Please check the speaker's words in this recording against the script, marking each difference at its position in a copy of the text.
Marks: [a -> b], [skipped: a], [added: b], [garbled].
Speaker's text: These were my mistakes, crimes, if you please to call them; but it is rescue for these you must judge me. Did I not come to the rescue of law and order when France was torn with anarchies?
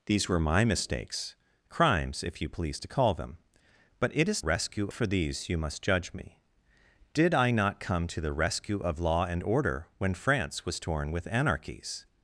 These were my mistakes, crimes, if you please to call them; but it is rescue for these you must judge me. Did I not come to the rescue of law and order when France was torn with anarchies?